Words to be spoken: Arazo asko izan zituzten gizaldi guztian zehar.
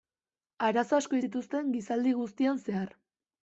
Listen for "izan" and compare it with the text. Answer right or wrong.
wrong